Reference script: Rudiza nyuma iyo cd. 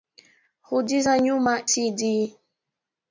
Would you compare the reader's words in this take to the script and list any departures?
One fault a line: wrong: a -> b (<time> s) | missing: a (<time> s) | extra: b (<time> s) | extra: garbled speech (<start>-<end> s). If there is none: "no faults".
missing: iyo (1.5 s)